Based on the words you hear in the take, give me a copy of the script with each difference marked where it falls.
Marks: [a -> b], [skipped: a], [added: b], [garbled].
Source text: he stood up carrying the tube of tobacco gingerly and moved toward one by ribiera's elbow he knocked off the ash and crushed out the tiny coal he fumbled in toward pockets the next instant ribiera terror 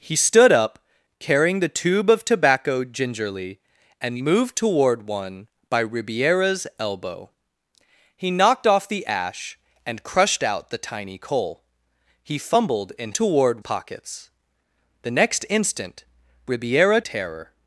he stood up carrying the tube of tobacco gingerly and moved toward one by ribiera's elbow he knocked off the ash and crushed out the tiny coal he fumbled in toward pockets the next instant ribiera terror